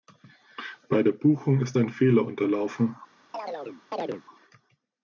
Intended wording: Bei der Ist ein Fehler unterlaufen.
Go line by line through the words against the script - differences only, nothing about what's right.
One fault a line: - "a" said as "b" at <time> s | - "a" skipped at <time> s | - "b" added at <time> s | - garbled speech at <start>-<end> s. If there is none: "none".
- "Buchung" added at 1.1 s